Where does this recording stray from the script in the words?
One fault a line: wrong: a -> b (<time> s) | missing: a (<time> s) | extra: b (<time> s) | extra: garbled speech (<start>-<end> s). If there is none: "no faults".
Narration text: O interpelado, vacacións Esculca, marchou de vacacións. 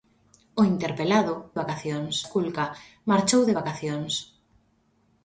no faults